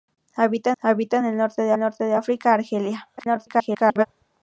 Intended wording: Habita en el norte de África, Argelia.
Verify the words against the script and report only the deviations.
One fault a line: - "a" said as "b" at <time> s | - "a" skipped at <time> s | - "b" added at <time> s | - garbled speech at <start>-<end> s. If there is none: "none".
- "habita" added at 0.8 s
- "norte de" added at 1.8 s
- garbled speech at 3.2-4.1 s